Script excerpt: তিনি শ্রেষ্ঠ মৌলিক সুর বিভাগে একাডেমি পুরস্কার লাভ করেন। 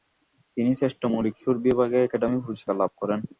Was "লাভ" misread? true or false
false